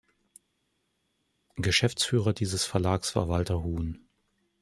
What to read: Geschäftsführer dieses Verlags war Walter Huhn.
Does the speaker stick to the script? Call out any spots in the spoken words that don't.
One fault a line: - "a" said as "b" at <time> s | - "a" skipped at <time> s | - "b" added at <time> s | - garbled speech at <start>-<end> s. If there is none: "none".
none